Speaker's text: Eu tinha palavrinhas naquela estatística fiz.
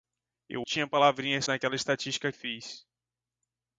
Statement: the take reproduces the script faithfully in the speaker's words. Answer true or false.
true